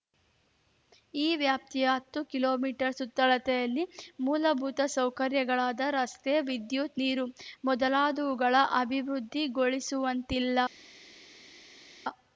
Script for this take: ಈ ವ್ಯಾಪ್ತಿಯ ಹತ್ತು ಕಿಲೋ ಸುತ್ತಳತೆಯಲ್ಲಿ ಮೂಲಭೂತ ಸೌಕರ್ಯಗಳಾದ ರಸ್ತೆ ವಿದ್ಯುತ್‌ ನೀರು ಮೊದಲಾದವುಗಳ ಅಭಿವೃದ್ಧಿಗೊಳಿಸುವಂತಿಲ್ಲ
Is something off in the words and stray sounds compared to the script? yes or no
yes